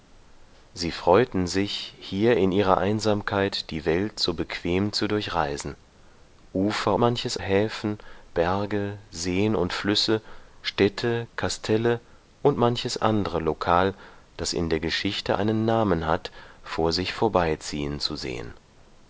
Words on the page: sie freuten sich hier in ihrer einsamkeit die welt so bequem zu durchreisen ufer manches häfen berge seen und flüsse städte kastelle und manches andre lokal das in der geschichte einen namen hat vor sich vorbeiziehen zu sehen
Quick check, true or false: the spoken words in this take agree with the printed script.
true